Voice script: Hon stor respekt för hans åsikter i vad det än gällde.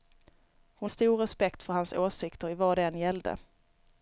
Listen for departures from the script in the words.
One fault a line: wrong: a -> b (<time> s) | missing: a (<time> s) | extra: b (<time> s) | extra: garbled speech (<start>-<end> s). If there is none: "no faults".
no faults